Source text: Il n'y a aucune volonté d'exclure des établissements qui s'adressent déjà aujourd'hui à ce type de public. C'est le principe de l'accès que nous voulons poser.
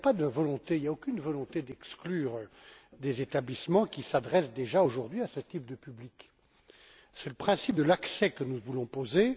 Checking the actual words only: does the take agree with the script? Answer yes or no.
yes